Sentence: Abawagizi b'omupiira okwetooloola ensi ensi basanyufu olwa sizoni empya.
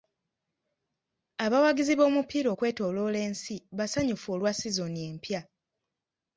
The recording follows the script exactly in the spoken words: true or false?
false